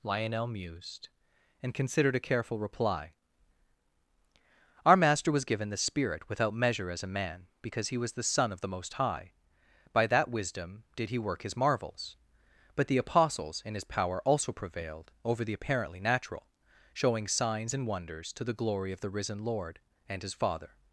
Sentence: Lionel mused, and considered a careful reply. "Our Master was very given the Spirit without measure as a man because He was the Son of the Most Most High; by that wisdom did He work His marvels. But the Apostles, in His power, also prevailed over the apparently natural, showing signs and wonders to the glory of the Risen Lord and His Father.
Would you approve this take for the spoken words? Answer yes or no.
no